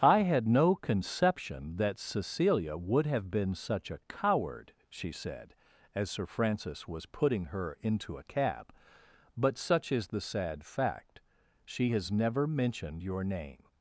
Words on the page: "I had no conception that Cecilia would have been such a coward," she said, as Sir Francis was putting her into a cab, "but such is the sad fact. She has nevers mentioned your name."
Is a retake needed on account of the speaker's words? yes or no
yes